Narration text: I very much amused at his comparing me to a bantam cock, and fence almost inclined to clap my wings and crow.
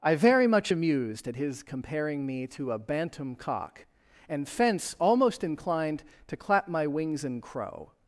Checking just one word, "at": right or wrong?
right